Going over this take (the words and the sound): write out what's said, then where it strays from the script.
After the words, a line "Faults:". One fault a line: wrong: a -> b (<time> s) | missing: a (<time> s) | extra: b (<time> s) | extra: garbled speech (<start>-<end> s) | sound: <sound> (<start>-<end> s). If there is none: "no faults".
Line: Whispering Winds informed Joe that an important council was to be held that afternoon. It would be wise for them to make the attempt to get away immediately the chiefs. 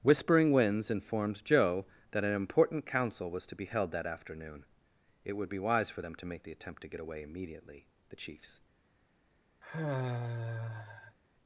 Whispering Winds informed Joe that an important council was to be held that afternoon. It would be wise for them to make the attempt to get away immediately the chiefs.
Faults:
sound: sigh (9.6-11.2 s)